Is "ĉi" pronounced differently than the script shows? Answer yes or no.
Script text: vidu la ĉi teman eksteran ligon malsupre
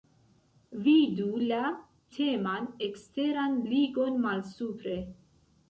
yes